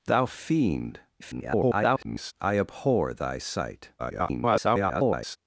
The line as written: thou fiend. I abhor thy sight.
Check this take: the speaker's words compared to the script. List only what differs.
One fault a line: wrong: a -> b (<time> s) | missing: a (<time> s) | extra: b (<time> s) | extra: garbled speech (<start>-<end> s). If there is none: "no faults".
extra: garbled speech (1.2-2.3 s)
extra: garbled speech (4.0-5.4 s)